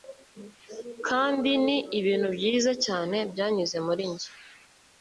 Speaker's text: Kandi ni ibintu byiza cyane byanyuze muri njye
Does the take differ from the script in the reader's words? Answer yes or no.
no